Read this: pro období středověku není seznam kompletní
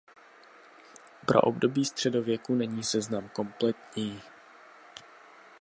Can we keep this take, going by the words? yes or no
yes